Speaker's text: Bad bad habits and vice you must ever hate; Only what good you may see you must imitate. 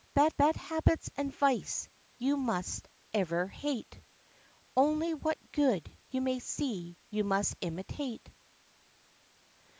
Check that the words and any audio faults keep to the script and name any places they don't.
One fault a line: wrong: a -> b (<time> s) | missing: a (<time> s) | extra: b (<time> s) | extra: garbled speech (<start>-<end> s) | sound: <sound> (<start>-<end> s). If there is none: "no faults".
no faults